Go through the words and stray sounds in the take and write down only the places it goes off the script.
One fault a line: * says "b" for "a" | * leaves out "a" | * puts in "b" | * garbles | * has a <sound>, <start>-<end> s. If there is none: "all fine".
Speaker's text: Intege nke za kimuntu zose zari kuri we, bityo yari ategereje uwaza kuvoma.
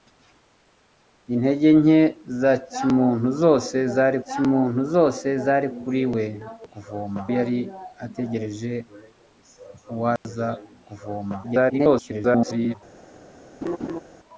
* puts in "kimuntu zose zari"
* says "kuvoma" for "bityo"
* has a dropout, 10.2-10.2 s
* garbles
* has a laugh, 13.6-14.0 s